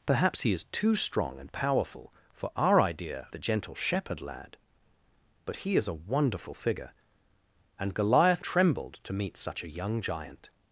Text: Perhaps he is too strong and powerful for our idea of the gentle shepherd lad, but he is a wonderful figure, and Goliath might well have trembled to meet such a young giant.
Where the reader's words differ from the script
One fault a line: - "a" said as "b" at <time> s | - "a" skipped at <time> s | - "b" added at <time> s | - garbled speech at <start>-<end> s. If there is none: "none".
- "of" skipped at 3.3 s
- "might well have" skipped at 8.4 s